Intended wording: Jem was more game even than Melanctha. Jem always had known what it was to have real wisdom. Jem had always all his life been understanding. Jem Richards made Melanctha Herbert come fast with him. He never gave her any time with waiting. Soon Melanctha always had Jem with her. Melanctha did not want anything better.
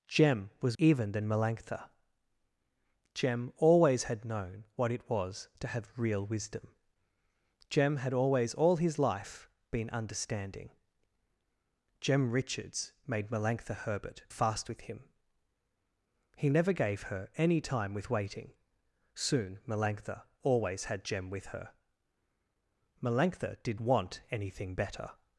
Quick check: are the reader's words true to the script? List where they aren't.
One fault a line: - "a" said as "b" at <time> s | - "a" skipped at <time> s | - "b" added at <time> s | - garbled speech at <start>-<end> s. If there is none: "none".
- "more game" skipped at 0.8 s
- "come" skipped at 14.2 s
- "not" skipped at 23.8 s